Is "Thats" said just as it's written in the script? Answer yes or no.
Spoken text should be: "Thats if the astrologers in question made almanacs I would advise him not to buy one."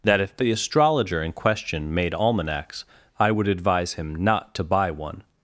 no